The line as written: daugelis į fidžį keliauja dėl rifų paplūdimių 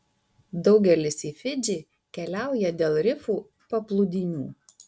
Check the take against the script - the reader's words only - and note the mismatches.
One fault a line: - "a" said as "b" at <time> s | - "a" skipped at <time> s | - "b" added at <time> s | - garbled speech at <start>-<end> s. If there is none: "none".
none